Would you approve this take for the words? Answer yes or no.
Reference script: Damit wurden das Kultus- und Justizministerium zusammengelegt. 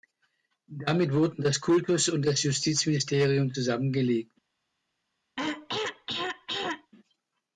no